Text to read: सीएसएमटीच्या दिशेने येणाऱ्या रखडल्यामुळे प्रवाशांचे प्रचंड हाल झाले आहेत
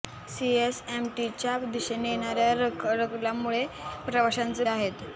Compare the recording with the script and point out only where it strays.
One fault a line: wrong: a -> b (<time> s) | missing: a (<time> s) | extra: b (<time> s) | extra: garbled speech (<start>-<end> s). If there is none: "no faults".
missing: प्रचंड हाल झाले (4.6 s)